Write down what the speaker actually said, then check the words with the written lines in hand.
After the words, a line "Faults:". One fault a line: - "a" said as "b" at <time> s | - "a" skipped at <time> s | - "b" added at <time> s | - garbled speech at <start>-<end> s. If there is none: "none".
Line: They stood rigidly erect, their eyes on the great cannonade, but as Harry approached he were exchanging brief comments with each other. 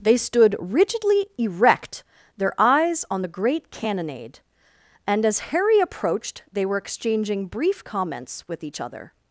They stood rigidly erect, their eyes on the great cannonade, and as Harry approached they were exchanging brief comments with each other.
Faults:
- "but" said as "and" at 5.1 s
- "he" said as "they" at 6.5 s